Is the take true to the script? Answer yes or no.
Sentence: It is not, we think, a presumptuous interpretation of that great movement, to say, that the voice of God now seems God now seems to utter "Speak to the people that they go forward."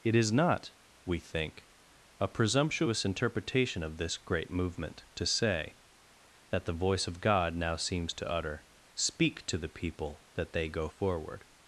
no